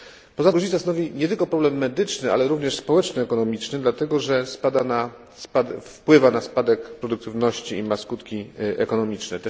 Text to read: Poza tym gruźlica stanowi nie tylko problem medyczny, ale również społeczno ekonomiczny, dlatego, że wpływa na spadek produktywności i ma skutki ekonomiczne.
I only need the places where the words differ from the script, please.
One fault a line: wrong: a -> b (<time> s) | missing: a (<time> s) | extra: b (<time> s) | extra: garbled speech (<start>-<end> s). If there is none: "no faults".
missing: tym (0.5 s)